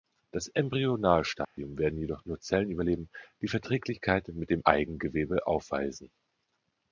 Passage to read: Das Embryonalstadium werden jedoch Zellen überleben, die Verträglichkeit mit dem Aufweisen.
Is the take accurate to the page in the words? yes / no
no